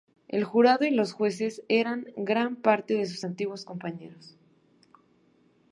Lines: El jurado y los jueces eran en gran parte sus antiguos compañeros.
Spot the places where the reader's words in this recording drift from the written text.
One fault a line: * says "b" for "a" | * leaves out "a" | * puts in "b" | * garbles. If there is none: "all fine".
all fine